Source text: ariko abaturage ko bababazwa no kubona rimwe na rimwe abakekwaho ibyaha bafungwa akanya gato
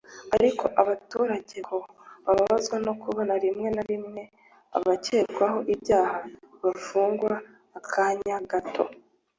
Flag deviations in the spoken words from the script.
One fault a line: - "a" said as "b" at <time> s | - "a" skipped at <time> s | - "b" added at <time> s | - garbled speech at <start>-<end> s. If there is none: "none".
none